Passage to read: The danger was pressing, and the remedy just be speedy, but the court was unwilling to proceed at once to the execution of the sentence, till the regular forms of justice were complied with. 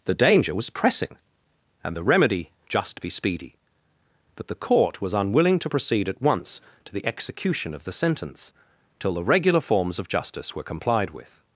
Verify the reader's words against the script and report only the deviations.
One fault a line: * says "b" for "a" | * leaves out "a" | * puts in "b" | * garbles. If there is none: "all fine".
all fine